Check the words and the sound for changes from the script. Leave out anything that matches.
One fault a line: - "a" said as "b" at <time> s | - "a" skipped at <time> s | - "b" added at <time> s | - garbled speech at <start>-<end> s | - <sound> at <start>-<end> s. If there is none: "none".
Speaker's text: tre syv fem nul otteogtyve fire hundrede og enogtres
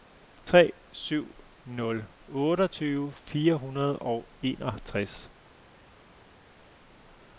- "fem" skipped at 1.4 s